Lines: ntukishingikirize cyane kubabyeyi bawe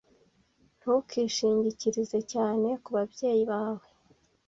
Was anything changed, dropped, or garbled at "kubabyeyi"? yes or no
no